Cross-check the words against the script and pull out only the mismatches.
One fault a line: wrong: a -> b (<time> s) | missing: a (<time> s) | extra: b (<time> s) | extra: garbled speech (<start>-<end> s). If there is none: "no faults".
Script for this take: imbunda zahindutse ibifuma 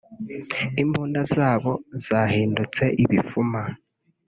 extra: zabo (1.3 s)